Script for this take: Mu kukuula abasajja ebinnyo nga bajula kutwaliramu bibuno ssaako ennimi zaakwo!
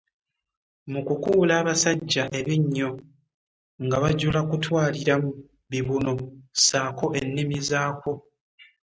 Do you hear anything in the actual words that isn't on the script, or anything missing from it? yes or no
no